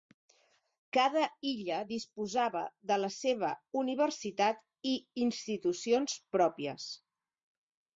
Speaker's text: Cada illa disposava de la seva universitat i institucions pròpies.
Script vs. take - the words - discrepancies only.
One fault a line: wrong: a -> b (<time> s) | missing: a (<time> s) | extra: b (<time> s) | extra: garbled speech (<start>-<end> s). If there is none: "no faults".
no faults